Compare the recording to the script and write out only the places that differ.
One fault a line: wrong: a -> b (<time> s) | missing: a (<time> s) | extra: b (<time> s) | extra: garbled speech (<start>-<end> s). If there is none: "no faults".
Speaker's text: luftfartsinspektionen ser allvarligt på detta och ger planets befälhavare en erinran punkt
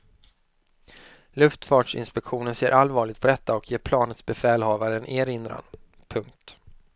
no faults